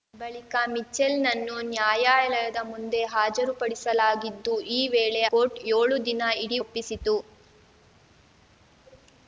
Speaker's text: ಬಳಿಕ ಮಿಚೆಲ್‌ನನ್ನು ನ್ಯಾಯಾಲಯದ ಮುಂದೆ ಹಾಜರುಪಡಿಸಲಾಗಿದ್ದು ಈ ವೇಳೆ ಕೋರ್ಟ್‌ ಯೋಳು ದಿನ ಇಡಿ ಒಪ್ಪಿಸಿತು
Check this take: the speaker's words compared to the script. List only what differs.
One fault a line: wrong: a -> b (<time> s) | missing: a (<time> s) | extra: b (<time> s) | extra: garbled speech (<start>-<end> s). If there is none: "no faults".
no faults